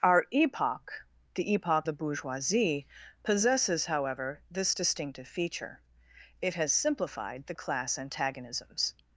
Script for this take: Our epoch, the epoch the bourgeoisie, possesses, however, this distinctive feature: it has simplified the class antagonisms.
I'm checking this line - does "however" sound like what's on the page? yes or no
yes